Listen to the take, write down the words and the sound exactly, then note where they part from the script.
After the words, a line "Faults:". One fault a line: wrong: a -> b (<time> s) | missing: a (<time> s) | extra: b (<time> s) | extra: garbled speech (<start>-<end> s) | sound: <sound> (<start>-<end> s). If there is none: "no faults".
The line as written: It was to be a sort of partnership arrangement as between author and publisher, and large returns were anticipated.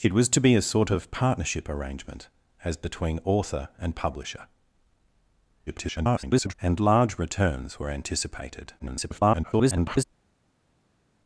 It was to be a sort of partnership arrangement as between author and publisher, [garbled] and large returns were anticipated. [garbled]
Faults:
extra: garbled speech (5.7-6.5 s)
extra: garbled speech (8.8-10.0 s)